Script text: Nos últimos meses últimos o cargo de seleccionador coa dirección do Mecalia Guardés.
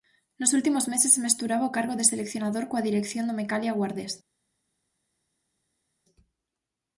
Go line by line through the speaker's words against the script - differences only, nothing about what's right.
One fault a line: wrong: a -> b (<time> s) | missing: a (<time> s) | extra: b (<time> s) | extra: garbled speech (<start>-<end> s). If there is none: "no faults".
wrong: últimos -> mesturaba (1.2 s)